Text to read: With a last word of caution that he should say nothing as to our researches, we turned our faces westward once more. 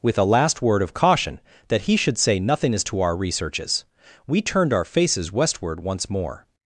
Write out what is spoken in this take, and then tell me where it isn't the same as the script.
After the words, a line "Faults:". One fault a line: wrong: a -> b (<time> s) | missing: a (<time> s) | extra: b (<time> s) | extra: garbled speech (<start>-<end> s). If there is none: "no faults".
With a last word of caution that he should say nothing as to our researches, we turned our faces westward once more.
Faults:
no faults